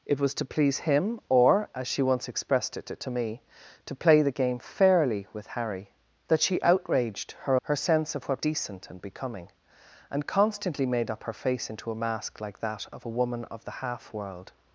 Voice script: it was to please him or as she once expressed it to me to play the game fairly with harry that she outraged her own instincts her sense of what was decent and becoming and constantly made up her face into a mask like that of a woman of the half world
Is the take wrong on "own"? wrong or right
wrong